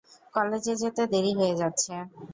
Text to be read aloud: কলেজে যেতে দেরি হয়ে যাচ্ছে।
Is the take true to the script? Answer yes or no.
yes